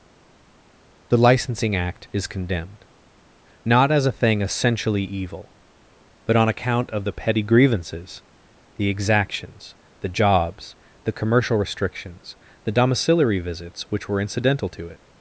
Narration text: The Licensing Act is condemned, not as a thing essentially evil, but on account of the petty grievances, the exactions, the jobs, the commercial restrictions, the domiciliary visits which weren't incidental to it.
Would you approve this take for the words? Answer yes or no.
no